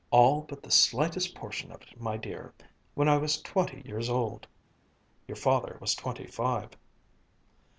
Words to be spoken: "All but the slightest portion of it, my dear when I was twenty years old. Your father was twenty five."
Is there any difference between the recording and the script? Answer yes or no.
no